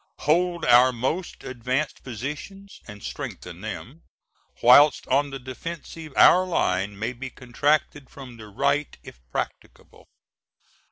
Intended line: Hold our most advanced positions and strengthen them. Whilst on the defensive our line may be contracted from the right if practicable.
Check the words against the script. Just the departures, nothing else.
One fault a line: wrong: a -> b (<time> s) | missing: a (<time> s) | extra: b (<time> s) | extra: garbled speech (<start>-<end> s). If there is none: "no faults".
no faults